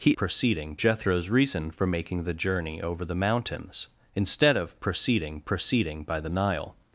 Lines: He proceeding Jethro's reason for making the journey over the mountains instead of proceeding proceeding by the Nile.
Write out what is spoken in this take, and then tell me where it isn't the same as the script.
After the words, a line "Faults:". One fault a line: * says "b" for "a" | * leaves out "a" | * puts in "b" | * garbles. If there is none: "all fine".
He proceeding Jethro's reason for making the journey over the mountains instead of proceeding proceeding by the Nile.
Faults:
all fine